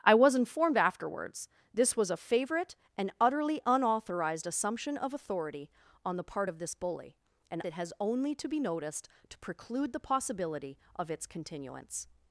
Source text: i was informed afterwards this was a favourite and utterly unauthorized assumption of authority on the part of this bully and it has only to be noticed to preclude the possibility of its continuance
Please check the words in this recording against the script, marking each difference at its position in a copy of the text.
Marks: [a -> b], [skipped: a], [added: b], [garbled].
i was informed afterwards this was a favourite and utterly unauthorized assumption of authority on the part of this bully and it has only to be noticed to preclude the possibility of its continuance